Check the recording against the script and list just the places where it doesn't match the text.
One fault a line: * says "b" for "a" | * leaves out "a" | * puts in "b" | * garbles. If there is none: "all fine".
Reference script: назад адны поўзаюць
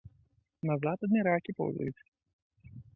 * puts in "ракі"